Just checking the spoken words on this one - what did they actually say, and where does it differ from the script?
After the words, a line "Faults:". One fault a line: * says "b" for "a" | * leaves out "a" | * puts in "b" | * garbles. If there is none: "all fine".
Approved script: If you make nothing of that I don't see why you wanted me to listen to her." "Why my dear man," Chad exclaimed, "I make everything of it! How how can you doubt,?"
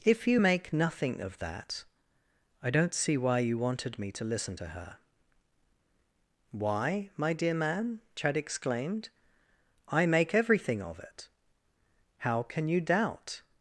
If you make nothing of that I don't see why you wanted me to listen to her." "Why my dear man," Chad exclaimed, "I make everything of it! How can you doubt,?"
Faults:
* leaves out "how"